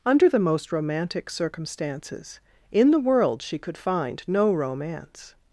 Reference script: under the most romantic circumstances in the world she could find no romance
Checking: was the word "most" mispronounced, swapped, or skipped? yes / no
no